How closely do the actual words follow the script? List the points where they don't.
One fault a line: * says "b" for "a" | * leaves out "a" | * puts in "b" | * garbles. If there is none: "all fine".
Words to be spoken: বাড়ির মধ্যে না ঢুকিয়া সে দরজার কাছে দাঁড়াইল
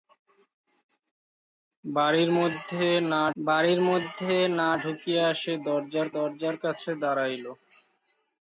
* puts in "বাড়ির মধ্যে না"
* puts in "দরজার"